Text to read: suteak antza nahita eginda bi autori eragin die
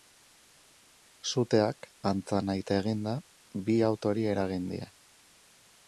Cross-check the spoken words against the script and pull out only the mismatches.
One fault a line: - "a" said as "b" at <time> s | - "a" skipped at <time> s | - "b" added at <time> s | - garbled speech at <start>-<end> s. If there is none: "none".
none